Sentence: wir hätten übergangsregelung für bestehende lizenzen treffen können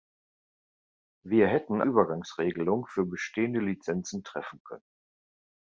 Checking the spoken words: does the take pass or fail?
pass